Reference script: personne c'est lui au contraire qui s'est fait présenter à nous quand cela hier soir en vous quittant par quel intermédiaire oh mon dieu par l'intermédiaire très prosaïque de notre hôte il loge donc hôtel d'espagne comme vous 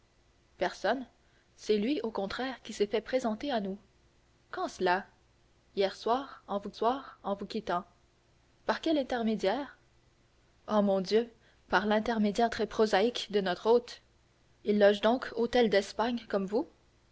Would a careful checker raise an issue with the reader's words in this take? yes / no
yes